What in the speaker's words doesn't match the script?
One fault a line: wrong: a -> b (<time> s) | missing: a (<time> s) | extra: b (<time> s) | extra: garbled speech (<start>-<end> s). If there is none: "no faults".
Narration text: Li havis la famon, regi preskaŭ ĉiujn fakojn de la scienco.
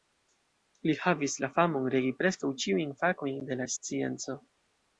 no faults